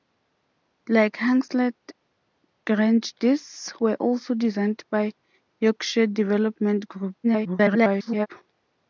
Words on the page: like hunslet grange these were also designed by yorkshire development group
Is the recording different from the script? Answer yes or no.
yes